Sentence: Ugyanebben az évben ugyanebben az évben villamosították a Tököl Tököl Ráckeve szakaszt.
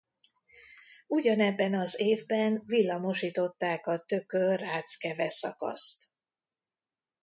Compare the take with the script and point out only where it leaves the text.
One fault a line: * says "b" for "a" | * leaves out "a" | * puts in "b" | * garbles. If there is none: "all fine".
* leaves out "ugyanebben az évben"
* leaves out "Tököl"